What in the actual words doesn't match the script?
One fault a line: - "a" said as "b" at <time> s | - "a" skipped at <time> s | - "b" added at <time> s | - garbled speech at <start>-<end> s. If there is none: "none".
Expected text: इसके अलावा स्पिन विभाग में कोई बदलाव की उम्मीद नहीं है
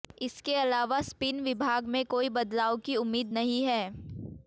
none